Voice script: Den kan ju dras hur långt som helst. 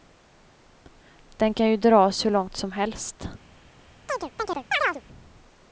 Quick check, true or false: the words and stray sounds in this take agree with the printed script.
false